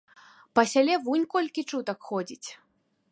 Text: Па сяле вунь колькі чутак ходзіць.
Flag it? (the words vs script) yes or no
no